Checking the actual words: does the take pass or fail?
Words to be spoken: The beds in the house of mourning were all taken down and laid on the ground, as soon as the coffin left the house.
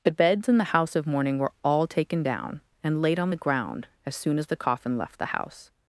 pass